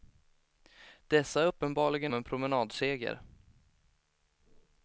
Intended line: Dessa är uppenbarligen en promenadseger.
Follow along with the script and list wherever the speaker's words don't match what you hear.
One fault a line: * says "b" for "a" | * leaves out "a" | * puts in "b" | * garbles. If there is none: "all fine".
all fine